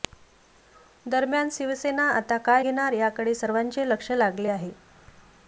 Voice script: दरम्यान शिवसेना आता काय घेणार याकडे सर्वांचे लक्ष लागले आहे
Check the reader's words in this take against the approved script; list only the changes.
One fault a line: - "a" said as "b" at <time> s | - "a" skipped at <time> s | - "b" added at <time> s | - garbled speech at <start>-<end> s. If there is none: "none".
none